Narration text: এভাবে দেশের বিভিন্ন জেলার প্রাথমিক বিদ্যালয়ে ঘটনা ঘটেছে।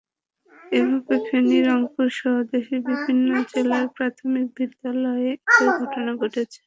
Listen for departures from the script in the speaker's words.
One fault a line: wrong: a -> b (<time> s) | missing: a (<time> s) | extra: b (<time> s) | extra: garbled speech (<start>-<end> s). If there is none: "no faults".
extra: ফেনী রংপুরসহ (1.3 s)
extra: একই (5.5 s)